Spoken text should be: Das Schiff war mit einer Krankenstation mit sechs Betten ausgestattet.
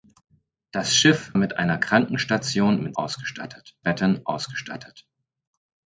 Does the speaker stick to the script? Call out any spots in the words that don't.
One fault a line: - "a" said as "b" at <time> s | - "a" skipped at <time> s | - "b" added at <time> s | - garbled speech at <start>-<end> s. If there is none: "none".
- "war" skipped at 1.3 s
- "sechs" said as "ausgestattet" at 3.0 s